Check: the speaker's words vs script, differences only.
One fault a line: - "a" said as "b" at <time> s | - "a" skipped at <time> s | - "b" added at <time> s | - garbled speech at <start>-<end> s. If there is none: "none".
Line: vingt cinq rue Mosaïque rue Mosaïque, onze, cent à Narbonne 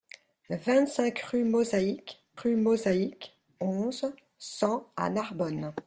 none